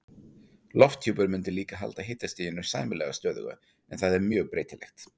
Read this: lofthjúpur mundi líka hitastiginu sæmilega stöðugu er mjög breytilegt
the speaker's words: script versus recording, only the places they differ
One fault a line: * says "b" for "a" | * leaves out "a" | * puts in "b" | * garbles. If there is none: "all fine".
* puts in "halda"
* puts in "en það"